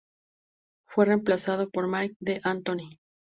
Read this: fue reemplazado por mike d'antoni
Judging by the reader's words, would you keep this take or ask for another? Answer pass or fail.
pass